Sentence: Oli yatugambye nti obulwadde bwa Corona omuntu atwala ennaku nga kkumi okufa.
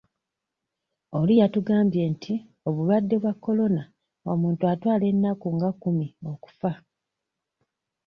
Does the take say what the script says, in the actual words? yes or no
yes